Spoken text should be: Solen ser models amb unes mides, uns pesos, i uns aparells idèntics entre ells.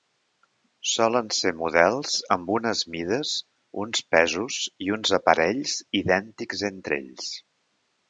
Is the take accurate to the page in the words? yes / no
yes